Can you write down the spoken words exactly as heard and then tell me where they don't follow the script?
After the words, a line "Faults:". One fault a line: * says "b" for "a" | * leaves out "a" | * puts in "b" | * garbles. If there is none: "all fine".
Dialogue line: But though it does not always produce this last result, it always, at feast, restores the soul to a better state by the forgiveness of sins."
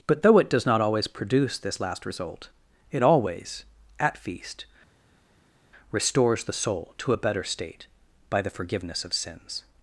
But though it does not always produce this last result, it always, at feast, restores the soul to a better state by the forgiveness of sins."
Faults:
all fine